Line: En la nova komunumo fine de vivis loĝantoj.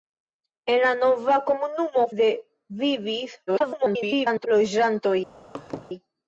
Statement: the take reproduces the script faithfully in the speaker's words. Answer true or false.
false